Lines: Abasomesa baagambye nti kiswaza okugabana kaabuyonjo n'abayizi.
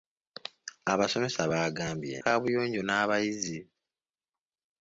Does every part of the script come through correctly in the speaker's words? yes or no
no